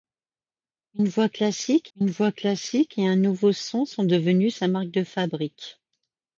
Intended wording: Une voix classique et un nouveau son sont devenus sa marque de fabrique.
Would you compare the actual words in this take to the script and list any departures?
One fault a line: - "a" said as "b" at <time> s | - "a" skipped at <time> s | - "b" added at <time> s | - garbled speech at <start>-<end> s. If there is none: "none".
- "une voix classique" added at 2.0 s